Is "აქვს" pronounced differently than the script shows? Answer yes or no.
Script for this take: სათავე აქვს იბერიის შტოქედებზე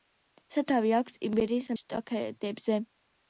no